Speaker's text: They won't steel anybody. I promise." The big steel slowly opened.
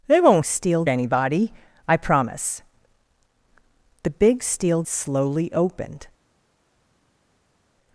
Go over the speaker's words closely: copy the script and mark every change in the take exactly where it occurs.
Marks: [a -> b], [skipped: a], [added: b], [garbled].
They won't steel anybody. I promise." The big steel slowly opened.